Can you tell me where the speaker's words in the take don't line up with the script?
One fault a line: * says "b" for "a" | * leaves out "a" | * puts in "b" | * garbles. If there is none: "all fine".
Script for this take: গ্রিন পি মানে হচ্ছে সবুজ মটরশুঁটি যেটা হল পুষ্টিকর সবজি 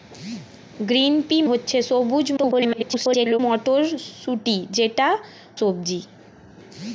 * leaves out "মানে"
* garbles
* leaves out "হল পুষ্টিকর"